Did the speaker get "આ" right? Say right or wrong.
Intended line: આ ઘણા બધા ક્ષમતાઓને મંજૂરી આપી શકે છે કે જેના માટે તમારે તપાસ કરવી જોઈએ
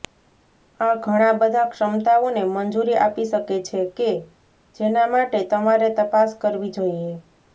right